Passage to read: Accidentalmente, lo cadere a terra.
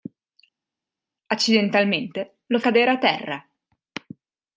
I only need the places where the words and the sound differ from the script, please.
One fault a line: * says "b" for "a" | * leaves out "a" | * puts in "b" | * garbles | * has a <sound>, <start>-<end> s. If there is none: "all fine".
all fine